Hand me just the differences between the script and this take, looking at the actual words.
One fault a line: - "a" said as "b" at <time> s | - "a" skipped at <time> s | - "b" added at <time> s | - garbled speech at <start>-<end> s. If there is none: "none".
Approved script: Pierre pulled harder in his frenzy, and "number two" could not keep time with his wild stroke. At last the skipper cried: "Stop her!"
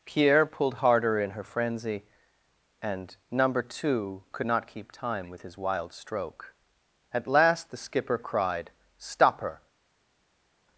- "his" said as "her" at 1.3 s